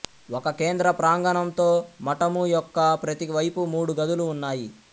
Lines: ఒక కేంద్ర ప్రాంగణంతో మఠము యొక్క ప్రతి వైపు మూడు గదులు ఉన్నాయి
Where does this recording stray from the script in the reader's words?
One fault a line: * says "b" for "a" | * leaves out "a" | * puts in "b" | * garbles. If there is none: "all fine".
all fine